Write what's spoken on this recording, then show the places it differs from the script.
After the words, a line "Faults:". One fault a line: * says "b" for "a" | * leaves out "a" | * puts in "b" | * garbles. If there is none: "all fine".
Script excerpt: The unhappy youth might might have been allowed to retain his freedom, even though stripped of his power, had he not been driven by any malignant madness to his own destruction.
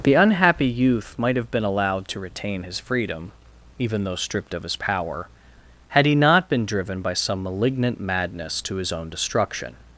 The unhappy youth might have been allowed to retain his freedom, even though stripped of his power, had he not been driven by some malignant madness to his own destruction.
Faults:
* leaves out "might"
* says "some" for "any"